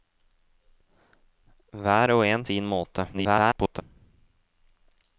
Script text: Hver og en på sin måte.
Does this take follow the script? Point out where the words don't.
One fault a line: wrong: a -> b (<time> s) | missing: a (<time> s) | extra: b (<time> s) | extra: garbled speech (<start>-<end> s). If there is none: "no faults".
missing: på (2.5 s)
extra: garbled speech (3.1-3.8 s)